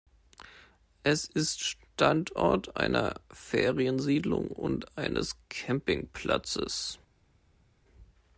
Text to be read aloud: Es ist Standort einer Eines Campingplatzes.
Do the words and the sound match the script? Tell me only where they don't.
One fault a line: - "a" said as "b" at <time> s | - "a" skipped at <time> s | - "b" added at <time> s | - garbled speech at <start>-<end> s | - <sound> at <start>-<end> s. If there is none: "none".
- "Feriensiedlung und" added at 3.3 s